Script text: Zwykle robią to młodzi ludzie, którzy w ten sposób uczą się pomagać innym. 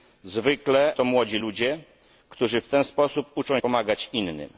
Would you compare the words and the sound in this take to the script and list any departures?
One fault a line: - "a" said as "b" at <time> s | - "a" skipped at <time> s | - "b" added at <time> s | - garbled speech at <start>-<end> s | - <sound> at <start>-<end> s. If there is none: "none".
- "robią" skipped at 0.9 s
- "się" skipped at 3.6 s